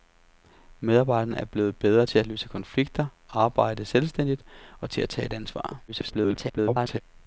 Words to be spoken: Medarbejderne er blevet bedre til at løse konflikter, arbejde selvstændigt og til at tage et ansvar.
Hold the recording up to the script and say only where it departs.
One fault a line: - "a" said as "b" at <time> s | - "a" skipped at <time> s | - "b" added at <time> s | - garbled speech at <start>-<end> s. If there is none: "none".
- garbled speech at 5.9-7.0 s